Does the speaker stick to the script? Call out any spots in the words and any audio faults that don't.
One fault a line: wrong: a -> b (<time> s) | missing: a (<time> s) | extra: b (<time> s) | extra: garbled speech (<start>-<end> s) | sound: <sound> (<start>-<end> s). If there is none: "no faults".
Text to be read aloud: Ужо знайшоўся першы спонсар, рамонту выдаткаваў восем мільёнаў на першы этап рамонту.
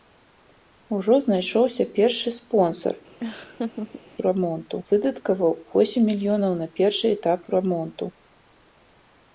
sound: laugh (3.2-4.0 s)